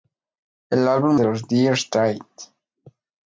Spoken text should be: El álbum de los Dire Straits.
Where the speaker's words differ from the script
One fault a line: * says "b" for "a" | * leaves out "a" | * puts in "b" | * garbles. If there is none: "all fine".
all fine